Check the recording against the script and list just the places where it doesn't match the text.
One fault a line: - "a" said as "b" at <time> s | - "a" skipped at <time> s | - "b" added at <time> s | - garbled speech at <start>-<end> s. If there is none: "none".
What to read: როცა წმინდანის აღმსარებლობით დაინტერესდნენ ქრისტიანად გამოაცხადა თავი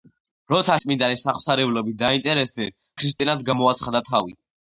none